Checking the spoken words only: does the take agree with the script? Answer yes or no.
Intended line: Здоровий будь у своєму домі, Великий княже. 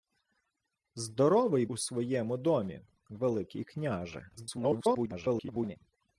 no